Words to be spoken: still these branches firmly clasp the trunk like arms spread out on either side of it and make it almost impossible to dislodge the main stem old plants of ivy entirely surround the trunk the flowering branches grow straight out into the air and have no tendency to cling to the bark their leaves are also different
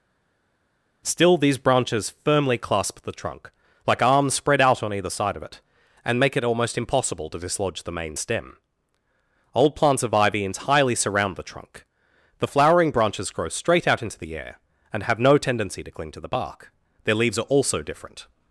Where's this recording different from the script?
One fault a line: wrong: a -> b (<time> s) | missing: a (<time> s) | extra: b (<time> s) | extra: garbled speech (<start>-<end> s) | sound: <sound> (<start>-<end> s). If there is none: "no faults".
no faults